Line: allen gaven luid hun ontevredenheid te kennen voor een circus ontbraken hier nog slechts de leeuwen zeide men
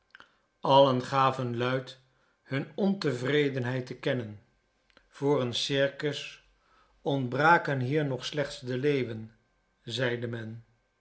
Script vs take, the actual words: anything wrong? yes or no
no